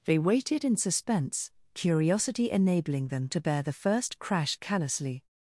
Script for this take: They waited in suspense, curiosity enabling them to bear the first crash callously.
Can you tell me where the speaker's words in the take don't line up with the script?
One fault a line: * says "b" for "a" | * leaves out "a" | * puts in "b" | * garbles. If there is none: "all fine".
all fine